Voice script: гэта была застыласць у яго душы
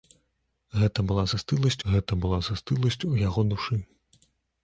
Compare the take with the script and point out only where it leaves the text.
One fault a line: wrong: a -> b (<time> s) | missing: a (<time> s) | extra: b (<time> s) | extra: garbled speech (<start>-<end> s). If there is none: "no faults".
extra: гэта была застыласць (1.9 s)